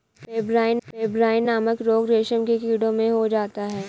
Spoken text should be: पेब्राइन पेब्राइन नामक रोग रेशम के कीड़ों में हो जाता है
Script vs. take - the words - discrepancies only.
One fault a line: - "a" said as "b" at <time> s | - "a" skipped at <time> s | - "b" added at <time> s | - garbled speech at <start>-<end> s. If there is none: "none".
none